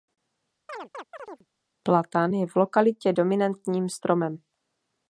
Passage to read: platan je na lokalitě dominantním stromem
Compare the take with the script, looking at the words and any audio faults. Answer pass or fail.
fail